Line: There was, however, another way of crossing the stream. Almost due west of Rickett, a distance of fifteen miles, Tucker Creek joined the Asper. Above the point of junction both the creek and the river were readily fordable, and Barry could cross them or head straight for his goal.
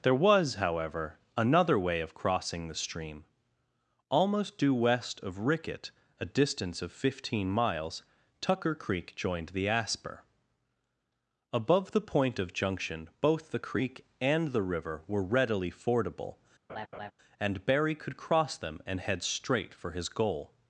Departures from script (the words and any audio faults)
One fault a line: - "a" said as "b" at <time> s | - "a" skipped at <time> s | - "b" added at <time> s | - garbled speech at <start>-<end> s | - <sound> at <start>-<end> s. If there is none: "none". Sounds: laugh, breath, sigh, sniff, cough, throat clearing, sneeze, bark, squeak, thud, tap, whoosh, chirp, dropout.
- laugh at 16.7-17.1 s
- "or" said as "and" at 18.8 s